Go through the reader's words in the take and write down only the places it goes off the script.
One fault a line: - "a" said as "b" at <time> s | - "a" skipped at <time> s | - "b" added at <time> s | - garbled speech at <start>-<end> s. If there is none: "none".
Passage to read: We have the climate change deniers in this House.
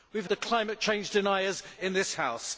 none